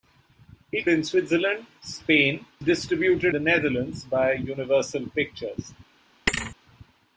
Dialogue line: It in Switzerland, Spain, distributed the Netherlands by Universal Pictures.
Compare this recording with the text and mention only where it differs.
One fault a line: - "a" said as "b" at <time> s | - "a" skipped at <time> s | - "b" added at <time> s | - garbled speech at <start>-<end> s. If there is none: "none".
none